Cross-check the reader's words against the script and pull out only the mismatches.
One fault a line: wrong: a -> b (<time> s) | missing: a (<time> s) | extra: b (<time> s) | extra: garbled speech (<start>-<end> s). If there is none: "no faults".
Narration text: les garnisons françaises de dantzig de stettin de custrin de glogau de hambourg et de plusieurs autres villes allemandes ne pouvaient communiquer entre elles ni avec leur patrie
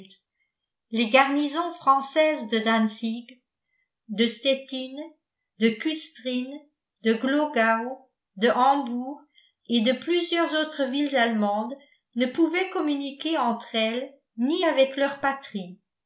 no faults